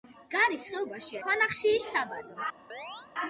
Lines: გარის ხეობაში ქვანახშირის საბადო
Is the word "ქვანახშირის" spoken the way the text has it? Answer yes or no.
yes